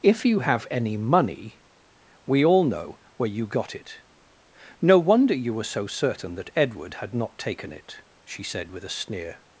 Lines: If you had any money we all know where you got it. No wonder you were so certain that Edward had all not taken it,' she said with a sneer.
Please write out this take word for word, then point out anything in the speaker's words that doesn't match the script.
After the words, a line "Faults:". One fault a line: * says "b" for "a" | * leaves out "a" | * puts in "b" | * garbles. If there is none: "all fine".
If you have any money we all know where you got it. No wonder you were so certain that Edward had not taken it,' she said with a sneer.
Faults:
* says "have" for "had"
* leaves out "all"